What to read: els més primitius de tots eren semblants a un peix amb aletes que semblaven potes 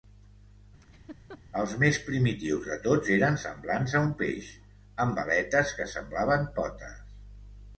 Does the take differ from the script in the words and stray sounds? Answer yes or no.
yes